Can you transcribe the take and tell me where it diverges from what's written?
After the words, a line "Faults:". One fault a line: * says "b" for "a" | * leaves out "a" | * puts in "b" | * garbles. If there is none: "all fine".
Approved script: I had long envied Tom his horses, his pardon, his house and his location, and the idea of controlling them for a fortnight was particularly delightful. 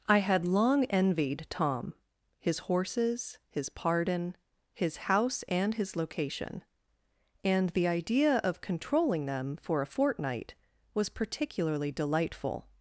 I had long envied Tom his horses, his pardon, his house and his location, and the idea of controlling them for a fortnight was particularly delightful.
Faults:
all fine